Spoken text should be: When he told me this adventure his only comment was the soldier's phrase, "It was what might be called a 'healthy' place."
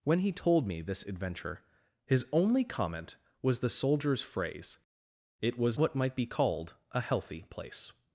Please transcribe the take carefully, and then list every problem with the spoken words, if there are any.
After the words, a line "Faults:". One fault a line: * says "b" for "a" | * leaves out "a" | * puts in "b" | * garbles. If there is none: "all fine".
When he told me this adventure his only comment was the soldier's phrase, "It was what might be called a 'healthy' place."
Faults:
all fine